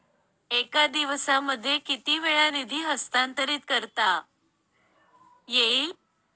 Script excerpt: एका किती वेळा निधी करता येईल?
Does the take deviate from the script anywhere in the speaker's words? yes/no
yes